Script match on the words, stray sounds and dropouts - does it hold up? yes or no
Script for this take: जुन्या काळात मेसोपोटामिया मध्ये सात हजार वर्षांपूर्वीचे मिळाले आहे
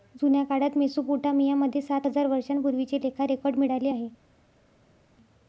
no